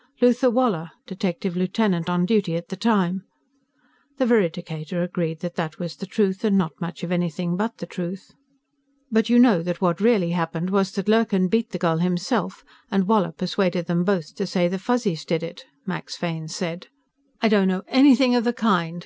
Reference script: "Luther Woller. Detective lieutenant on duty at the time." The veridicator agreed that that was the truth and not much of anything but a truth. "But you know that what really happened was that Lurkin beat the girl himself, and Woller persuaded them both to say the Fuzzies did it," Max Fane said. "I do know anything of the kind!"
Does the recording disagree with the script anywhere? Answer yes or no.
yes